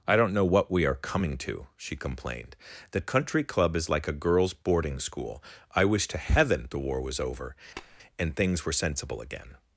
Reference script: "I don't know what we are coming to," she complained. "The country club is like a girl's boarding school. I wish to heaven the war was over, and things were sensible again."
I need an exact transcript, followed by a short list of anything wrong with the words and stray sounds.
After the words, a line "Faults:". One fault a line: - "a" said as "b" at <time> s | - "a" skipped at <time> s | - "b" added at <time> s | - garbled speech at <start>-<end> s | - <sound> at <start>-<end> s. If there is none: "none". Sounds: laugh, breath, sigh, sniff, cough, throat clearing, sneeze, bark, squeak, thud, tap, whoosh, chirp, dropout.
"I don't know what we are coming to," she complained. "The country club is like a girl's boarding school. I wish to heaven the war was over, and things were sensible again."
Faults:
- tap at 7.8-8.0 s